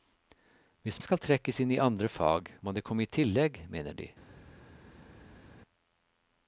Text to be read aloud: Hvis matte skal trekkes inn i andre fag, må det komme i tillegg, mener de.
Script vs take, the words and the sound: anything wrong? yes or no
yes